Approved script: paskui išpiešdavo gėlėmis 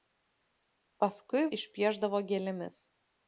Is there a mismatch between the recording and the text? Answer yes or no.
no